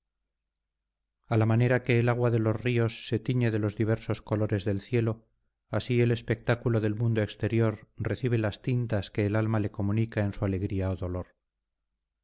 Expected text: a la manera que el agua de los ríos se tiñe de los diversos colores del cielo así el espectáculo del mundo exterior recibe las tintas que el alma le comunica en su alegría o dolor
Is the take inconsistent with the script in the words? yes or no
no